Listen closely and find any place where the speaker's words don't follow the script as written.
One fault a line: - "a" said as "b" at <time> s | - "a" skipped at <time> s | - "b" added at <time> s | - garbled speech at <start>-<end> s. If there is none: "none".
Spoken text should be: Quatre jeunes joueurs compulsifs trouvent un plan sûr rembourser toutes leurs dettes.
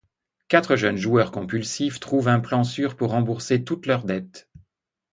- "pour" added at 3.0 s